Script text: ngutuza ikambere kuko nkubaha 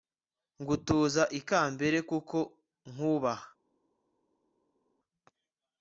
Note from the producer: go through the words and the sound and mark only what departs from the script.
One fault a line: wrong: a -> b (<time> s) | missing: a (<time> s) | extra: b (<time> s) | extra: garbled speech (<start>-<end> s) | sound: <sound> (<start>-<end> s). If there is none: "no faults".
no faults